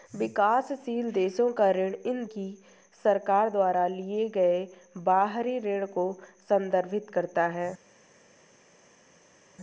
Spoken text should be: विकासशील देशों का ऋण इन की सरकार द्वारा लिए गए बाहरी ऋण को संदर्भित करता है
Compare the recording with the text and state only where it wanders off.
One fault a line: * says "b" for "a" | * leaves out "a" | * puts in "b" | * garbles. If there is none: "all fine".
all fine